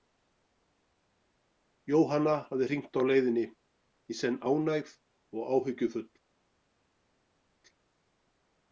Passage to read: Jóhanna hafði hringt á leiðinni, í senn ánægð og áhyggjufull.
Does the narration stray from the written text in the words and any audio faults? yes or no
no